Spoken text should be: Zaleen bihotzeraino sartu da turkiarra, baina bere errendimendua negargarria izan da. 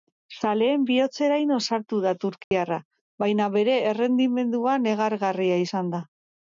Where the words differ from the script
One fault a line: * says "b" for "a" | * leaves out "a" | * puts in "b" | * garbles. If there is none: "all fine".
all fine